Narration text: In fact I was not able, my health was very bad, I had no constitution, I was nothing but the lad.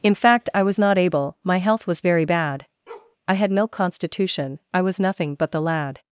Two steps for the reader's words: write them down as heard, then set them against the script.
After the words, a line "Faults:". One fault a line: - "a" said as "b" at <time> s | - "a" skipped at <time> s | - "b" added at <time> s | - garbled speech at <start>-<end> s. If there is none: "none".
In fact I was not able, my health was very bad, I had no constitution, I was nothing but the lad.
Faults:
none